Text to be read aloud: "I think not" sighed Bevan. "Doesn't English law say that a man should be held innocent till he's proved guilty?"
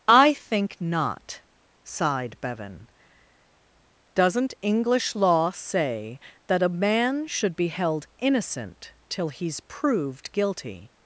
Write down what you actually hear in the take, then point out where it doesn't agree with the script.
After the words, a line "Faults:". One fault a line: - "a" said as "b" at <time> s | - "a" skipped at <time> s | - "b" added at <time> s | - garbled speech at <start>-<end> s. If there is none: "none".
"I think not" sighed Bevan. "Doesn't English law say that a man should be held innocent till he's proved guilty?"
Faults:
none